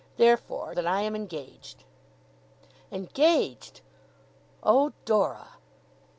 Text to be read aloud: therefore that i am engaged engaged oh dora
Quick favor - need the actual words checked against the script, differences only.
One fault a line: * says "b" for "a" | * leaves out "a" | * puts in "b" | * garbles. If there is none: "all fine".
all fine